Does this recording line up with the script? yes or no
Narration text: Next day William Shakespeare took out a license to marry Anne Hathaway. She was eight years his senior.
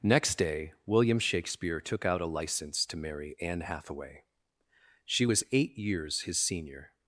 yes